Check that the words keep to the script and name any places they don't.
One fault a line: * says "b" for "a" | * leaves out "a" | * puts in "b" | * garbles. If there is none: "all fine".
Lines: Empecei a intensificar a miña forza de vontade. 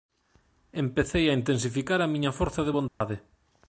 all fine